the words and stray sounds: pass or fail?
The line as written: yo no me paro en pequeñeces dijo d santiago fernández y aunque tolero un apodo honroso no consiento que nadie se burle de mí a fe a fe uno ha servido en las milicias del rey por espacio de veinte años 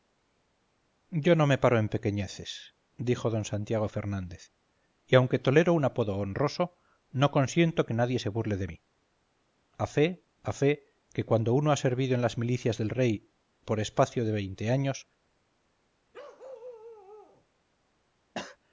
fail